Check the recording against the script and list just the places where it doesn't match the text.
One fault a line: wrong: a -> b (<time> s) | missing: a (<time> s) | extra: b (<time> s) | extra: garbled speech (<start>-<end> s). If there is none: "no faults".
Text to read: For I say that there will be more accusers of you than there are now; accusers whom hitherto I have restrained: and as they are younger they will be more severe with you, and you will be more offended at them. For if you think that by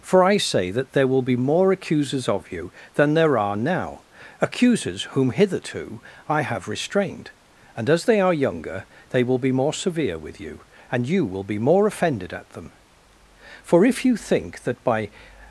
no faults